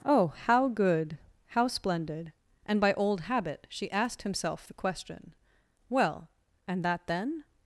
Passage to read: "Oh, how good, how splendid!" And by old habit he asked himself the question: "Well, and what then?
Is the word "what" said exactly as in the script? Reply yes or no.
no